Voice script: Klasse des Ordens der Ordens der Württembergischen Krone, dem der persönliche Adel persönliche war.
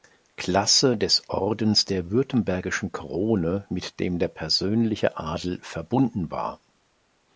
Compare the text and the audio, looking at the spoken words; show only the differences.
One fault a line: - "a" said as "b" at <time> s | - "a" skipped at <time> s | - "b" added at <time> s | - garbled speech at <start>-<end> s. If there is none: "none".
- "Ordens der" skipped at 2.1 s
- "mit" added at 3.7 s
- "persönliche" said as "verbunden" at 5.6 s